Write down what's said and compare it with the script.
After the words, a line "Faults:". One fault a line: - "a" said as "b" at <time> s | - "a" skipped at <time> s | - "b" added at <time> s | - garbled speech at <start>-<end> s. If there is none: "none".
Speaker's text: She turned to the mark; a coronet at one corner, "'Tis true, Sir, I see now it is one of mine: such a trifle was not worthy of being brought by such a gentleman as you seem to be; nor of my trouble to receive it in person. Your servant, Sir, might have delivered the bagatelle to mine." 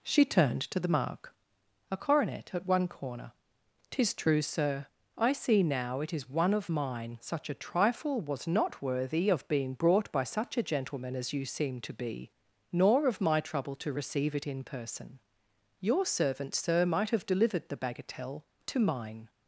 She turned to the mark; a coronet at one corner, "'Tis true, Sir, I see now it is one of mine: such a trifle was not worthy of being brought by such a gentleman as you seem to be; nor of my trouble to receive it in person. Your servant, Sir, might have delivered the bagatelle to mine."
Faults:
none